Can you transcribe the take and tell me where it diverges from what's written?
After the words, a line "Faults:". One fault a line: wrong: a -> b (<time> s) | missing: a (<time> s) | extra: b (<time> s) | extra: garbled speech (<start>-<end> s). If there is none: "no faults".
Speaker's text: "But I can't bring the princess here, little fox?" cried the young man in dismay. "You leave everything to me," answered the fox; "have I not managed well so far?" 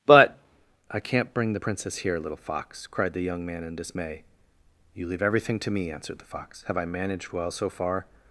"But I can't bring the princess here, little fox?" cried the young man in dismay. "You leave everything to me," answered the fox; "have I managed well so far?"
Faults:
missing: not (6.8 s)